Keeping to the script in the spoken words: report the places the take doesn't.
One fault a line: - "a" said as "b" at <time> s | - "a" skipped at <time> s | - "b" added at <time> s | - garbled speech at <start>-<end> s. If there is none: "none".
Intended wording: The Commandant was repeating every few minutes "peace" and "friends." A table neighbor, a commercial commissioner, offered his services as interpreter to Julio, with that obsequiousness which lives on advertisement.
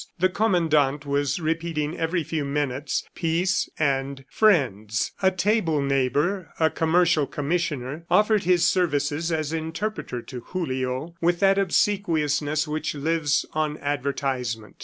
none